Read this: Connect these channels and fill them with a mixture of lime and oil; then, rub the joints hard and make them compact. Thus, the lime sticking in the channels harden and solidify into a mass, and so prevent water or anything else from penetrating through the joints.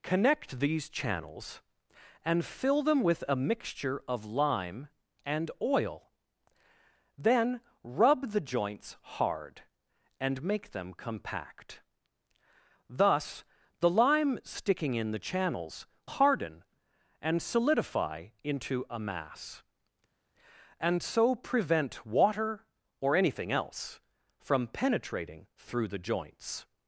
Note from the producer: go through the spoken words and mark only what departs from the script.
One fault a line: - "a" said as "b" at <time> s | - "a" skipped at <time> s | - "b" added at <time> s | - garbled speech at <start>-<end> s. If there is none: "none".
none